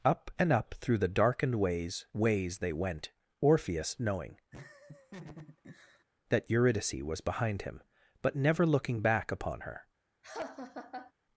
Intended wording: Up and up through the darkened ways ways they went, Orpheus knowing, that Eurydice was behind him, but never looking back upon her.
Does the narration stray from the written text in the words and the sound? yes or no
yes